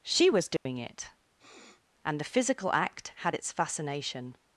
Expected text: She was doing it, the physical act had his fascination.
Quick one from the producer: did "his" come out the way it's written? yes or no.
no